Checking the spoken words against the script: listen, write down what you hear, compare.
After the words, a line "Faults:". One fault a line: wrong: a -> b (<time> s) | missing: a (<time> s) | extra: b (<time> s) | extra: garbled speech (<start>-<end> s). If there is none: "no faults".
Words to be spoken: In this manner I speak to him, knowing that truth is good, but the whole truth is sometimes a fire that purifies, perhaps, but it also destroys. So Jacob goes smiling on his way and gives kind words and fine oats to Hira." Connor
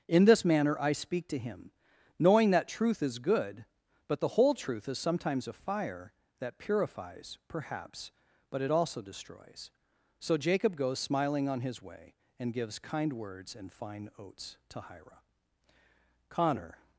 In this manner I speak to him, knowing that truth is good, but the whole truth is sometimes a fire that purifies, perhaps, but it also destroys. So Jacob goes smiling on his way and gives kind words and fine oats to Hira." Connor
Faults:
no faults